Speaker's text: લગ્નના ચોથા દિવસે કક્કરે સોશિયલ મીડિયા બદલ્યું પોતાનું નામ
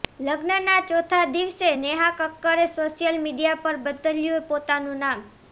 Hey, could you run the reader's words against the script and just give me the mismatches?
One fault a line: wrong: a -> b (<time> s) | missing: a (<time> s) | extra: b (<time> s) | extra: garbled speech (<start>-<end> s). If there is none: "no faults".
extra: નેહા (1.8 s)
extra: પર (3.6 s)